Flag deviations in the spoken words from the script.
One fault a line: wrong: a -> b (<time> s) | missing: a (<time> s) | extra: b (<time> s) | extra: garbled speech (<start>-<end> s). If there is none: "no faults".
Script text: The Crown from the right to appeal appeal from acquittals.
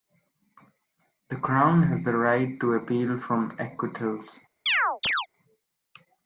wrong: from -> has (1.8 s)
missing: appeal (3.2 s)